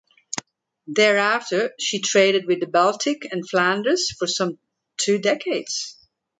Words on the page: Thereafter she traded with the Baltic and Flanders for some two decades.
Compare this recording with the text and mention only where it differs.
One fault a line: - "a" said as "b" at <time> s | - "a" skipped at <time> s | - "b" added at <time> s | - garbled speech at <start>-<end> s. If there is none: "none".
none